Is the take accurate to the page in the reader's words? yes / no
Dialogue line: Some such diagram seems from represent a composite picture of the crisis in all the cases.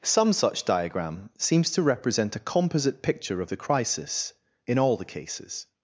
no